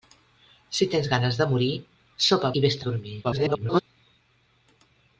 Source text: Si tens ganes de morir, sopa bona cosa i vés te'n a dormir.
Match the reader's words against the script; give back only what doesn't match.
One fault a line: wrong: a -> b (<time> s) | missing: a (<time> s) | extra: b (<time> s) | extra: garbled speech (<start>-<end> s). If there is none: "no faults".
missing: bona cosa (2.5 s)
missing: te'n (2.8 s)
extra: garbled speech (3.2-3.8 s)